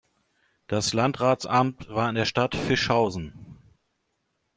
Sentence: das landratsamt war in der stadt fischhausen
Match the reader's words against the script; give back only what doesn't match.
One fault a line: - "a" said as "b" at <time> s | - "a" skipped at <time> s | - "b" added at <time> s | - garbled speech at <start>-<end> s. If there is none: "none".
none